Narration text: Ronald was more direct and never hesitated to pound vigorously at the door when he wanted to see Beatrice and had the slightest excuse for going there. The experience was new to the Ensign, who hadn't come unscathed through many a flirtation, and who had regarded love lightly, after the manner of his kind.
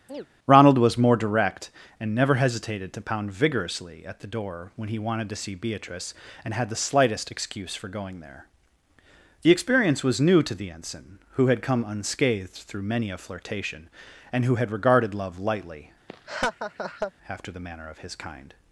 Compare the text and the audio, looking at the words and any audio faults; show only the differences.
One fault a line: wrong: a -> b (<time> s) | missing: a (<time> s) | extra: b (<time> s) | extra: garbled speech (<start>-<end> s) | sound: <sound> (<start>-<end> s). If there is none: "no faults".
sound: chirp (0.1-0.3 s)
wrong: hadn't -> had (11.5 s)
sound: laugh (16.1-17.1 s)